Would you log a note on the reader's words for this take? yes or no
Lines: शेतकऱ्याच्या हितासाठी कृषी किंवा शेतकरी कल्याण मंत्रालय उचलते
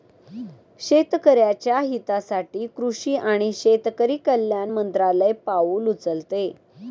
yes